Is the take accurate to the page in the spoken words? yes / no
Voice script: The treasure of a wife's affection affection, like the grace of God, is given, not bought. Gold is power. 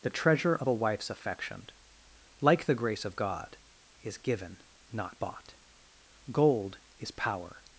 no